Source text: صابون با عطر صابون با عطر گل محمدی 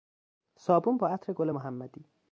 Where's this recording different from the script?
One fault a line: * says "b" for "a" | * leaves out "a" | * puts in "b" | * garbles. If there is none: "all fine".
* leaves out "صابون با عطر"